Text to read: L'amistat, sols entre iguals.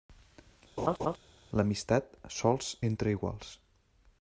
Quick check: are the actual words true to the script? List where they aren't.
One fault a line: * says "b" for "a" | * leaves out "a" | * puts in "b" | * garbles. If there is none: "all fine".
all fine